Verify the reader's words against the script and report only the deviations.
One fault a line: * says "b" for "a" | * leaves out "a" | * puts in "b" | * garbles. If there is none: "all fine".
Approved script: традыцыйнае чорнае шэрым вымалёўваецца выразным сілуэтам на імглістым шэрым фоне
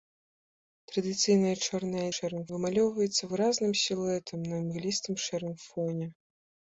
all fine